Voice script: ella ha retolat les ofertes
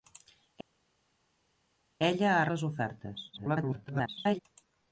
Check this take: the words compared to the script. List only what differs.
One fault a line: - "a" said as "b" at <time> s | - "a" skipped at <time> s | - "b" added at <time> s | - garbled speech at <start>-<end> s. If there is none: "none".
- "retolat" skipped at 2.4 s
- garbled speech at 3.3-4.4 s